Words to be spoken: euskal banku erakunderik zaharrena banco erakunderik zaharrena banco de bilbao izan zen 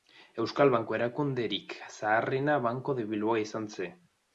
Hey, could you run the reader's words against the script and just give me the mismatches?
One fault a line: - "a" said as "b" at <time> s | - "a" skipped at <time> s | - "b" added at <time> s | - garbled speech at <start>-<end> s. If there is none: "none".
- "erakunderik zaharrena banco" skipped at 3.0 s